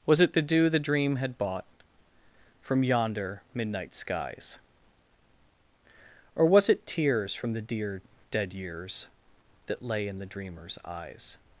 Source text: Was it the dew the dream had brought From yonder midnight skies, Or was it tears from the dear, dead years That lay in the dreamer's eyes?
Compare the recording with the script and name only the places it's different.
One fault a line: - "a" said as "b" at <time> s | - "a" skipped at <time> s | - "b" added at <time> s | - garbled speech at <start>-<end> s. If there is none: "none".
- "brought" said as "bought" at 1.4 s